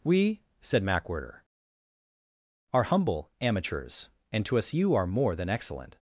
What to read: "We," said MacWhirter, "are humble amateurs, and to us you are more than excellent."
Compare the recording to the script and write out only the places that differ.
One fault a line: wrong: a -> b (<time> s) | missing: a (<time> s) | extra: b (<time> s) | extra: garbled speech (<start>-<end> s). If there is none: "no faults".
no faults